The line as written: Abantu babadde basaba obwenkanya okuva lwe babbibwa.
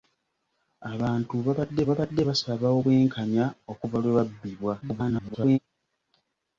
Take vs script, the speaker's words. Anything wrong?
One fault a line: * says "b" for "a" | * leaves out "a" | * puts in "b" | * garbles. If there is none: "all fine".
* puts in "babadde"
* garbles